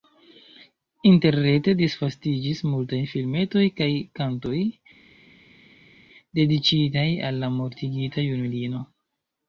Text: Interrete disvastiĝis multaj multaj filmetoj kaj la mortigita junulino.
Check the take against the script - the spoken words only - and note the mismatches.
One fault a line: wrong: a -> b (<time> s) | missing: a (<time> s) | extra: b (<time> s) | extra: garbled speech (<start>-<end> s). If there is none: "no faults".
missing: multaj (3.0 s)
extra: kantoj dediĉitaj al (4.2 s)